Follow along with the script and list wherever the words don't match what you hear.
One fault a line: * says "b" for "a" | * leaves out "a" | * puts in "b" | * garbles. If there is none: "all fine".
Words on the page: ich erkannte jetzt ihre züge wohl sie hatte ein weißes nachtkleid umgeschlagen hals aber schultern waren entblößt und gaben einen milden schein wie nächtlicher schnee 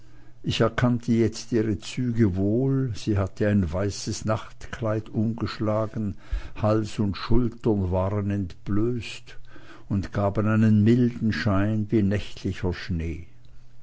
* says "und" for "aber"